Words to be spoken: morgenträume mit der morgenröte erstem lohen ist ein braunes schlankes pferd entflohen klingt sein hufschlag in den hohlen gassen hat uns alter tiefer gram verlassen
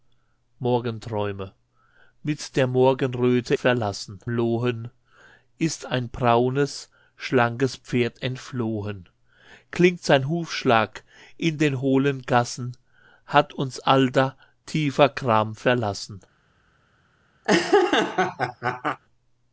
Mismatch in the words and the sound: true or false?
true